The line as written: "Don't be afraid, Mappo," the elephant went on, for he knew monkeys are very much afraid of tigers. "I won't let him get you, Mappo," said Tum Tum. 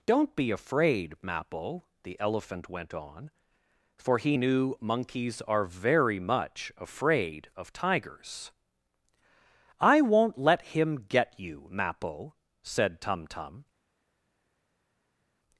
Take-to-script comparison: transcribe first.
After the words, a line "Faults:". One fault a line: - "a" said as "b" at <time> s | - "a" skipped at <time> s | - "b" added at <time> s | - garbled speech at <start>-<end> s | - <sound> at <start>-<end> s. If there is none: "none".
"Don't be afraid, Mappo," the elephant went on, for he knew monkeys are very much afraid of tigers. "I won't let him get you, Mappo," said Tum Tum.
Faults:
none